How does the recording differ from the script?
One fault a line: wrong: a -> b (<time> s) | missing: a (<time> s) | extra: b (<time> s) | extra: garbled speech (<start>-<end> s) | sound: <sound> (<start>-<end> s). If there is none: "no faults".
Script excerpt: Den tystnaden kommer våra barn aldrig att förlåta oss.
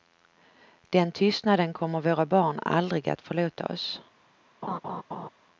sound: laugh (4.6-5.3 s)